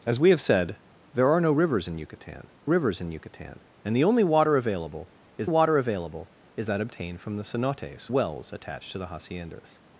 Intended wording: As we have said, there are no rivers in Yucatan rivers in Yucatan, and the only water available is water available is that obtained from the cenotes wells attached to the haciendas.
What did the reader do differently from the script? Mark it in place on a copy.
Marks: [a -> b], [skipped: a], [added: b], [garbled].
As we have said, there are no rivers in Yucatan rivers in Yucatan, and the only water available is water available is that obtained from the cenotes wells attached to the haciendas.